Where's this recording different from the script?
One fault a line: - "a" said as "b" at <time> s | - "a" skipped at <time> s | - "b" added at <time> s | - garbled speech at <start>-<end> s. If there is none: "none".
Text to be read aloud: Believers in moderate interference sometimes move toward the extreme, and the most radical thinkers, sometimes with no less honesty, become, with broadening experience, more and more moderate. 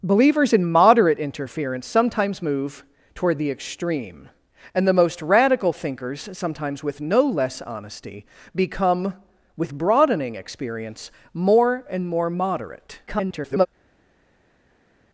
- garbled speech at 13.1-13.7 s